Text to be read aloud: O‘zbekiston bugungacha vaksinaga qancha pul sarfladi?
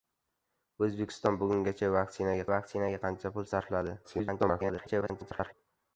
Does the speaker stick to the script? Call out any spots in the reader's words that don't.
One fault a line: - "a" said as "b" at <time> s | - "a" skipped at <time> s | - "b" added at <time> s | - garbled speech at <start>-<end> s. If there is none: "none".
- "vaksinaga" added at 2.5 s
- garbled speech at 4.0-5.5 s